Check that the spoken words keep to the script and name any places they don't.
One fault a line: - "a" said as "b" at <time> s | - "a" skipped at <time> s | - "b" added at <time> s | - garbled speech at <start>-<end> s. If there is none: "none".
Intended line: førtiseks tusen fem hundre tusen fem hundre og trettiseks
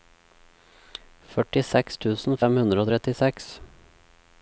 - "tusen fem hundre" skipped at 2.8 s